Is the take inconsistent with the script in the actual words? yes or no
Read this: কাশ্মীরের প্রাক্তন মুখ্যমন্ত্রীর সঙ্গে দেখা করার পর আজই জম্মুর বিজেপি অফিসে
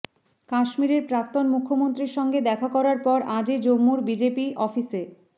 no